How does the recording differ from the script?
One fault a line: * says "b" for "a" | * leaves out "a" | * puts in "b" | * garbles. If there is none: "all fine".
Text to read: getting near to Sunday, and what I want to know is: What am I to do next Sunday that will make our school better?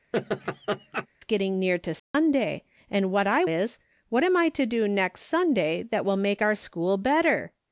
* leaves out "want to know"